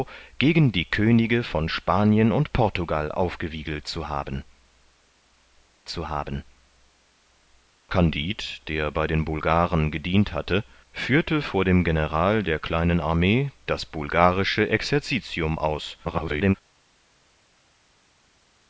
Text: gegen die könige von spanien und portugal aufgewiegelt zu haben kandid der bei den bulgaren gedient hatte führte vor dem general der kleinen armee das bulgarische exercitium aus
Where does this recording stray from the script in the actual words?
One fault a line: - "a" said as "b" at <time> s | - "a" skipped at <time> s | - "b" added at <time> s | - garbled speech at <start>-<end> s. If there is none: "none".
- "zu haben" added at 5.9 s
- garbled speech at 16.0-16.5 s